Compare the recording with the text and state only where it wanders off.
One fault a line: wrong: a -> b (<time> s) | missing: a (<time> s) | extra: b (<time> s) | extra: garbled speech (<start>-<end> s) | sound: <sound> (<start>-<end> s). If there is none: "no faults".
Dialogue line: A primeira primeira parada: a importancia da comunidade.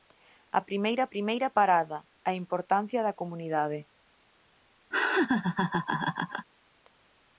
sound: laugh (4.9-6.5 s)